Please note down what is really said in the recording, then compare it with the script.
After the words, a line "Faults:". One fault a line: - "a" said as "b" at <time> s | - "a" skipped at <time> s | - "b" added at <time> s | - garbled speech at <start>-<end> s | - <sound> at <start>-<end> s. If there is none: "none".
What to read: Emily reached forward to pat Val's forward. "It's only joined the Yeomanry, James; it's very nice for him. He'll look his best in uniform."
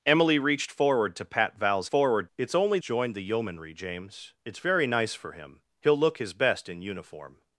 Emily reached forward to pat Val's forward. "It's only joined the Yeomanry, James; it's very nice for him. He'll look his best in uniform."
Faults:
none